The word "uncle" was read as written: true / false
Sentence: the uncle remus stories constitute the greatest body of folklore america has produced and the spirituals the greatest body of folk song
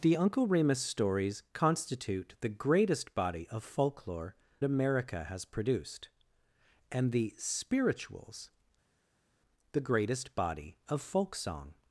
true